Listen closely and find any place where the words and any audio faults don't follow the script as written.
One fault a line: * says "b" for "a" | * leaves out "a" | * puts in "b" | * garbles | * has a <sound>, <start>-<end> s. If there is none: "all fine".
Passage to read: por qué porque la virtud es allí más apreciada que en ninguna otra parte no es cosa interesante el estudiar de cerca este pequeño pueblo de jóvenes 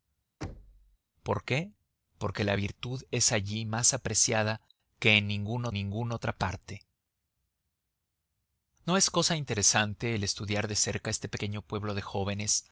* has a thud, 0.4-1.0 s
* puts in "ninguna"